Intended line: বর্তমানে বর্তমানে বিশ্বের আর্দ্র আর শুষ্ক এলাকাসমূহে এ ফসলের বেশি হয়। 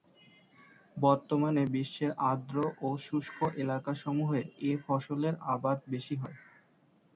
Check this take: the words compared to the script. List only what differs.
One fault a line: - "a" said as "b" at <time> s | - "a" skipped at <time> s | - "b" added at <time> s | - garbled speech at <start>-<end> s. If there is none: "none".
- "বর্তমানে" skipped at 1.6 s
- "আর" said as "ও" at 2.8 s
- "আবাদ" added at 5.5 s